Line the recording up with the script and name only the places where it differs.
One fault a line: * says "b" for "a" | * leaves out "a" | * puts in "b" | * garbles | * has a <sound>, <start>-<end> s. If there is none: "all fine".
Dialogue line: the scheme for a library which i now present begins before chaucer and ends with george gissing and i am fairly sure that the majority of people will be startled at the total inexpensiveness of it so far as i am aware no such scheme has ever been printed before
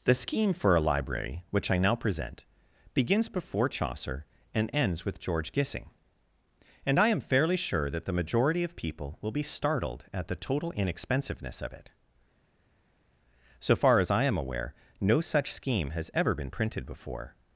all fine